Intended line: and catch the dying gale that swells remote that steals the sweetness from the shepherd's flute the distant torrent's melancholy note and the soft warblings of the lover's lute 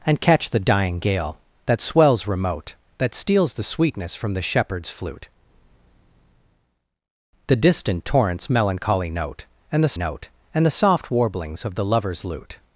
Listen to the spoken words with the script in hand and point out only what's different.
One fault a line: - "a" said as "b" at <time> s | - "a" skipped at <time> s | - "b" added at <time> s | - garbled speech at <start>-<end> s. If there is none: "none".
- "note and the" added at 10.0 s